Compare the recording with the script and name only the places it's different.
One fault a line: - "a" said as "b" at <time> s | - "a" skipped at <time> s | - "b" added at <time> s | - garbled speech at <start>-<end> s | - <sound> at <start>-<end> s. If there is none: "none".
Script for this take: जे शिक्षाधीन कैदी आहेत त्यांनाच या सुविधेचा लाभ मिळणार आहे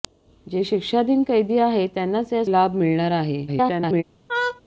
- "सुविधेचा" skipped at 2.4 s
- garbled speech at 3.5-4.0 s
- laugh at 4.3-4.6 s